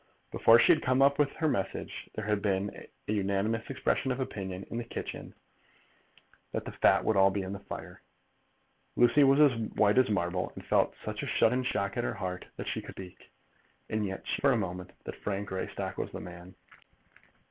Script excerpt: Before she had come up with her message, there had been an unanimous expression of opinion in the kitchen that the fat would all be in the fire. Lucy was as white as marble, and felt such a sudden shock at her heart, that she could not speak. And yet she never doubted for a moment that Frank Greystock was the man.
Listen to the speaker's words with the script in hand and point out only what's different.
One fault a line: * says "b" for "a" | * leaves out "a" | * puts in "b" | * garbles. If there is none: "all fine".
* leaves out "not"
* leaves out "never doubted"